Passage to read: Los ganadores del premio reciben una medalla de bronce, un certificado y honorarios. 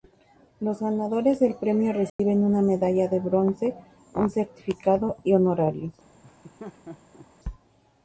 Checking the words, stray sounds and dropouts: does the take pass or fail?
fail